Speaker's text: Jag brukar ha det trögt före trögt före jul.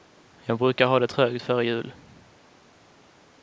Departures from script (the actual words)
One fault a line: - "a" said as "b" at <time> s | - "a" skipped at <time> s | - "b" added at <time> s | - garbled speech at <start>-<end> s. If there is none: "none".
- "trögt före" skipped at 1.6 s